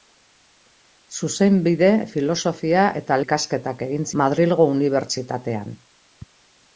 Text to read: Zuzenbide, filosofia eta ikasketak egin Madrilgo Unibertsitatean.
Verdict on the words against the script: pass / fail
pass